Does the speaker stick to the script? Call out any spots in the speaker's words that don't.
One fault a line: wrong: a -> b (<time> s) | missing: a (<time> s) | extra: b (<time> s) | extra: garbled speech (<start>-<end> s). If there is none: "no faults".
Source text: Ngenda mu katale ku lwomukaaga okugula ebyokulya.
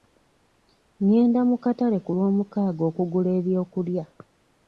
no faults